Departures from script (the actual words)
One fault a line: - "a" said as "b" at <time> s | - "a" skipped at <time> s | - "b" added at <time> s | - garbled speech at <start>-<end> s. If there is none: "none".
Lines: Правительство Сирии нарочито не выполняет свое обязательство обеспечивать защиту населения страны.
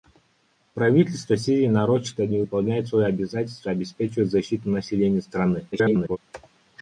- garbled speech at 5.7-6.2 s